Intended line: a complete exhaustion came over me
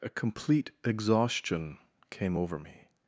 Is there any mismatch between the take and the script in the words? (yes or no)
no